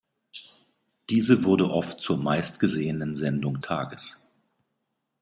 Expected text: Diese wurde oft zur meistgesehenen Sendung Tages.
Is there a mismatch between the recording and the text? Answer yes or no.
no